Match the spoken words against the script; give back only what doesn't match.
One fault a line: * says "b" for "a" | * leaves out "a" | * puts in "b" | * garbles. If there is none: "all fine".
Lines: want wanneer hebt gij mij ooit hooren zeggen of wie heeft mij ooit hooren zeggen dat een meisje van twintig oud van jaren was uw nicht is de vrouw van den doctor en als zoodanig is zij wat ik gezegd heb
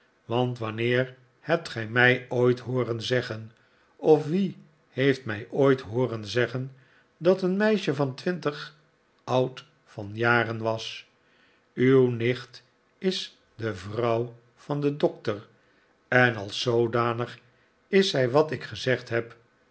all fine